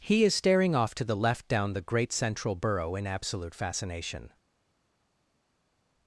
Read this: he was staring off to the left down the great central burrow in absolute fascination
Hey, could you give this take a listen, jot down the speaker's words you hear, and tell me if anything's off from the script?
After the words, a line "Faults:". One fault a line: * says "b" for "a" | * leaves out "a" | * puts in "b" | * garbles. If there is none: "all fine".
he is staring off to the left down the great central burrow in absolute fascination
Faults:
* says "is" for "was"